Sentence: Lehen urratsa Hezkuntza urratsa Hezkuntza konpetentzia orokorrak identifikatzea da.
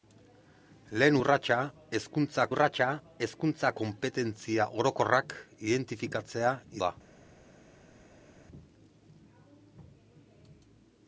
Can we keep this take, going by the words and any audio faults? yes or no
yes